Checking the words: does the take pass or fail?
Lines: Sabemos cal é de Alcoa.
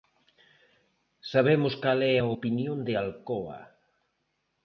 fail